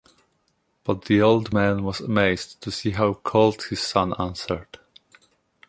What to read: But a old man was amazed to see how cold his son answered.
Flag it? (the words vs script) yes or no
yes